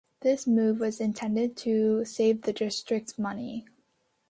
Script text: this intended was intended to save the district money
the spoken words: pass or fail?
fail